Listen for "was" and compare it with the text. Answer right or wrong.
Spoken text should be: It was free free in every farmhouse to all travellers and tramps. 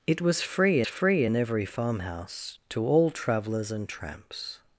right